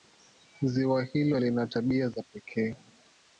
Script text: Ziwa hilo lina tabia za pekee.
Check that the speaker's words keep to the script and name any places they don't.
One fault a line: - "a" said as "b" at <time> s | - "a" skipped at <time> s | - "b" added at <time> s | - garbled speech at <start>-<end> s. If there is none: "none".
none